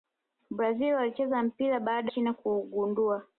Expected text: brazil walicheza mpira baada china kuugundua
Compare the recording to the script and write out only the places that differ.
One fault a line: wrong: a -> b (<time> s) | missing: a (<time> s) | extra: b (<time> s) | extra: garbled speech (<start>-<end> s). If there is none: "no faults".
no faults